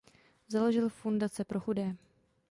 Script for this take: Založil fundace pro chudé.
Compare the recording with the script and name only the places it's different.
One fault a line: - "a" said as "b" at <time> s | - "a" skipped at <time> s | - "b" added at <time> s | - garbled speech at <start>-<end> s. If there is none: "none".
none